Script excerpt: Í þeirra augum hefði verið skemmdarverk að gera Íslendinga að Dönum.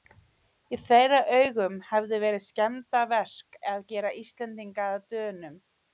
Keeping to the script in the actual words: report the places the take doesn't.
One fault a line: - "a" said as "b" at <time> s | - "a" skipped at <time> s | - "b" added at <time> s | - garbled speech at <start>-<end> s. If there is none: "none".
none